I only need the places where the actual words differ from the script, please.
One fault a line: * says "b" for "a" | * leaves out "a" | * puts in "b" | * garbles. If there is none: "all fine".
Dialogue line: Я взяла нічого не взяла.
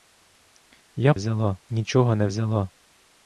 all fine